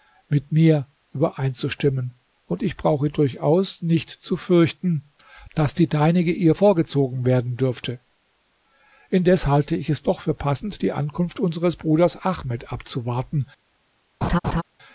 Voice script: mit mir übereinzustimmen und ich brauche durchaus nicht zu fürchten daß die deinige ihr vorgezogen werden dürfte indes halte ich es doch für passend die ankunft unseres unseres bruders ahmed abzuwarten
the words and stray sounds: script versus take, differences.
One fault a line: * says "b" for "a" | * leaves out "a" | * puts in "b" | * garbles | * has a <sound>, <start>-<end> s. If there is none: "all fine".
* leaves out "unseres"
* has a laugh, 14.2-14.6 s